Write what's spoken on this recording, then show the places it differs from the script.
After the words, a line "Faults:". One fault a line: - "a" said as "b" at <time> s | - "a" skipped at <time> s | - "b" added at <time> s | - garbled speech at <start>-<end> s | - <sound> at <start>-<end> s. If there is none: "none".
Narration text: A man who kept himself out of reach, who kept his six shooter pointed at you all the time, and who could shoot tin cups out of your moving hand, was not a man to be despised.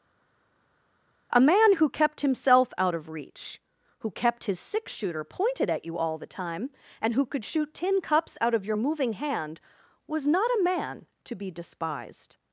A man who kept himself out of reach, who kept his six shooter pointed at you all the time, and who could shoot tin cups out of your moving hand, was not a man to be despised.
Faults:
none